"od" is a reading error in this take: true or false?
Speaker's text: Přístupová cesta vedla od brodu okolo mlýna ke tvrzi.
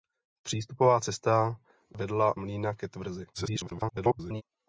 true